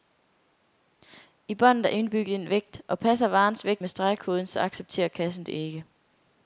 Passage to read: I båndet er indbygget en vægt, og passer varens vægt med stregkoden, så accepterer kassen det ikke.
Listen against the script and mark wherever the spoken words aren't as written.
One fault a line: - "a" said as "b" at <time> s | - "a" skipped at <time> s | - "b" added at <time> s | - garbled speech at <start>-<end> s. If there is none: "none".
none